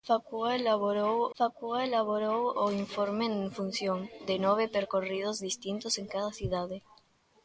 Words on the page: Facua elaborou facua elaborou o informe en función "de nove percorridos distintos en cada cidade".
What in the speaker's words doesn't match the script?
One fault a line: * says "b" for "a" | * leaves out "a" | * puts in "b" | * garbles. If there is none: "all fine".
all fine